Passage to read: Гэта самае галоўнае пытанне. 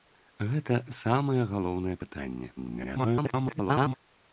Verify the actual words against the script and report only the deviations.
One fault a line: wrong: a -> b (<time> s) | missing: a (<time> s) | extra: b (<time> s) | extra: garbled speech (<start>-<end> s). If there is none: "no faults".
extra: garbled speech (2.6-3.9 s)